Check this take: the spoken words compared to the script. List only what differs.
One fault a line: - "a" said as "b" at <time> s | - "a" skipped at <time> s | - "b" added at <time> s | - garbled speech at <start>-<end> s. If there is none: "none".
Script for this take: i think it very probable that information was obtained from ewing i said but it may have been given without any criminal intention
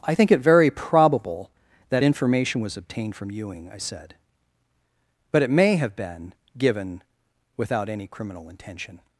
none